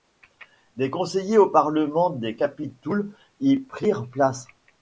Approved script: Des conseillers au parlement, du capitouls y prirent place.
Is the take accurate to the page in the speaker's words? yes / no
no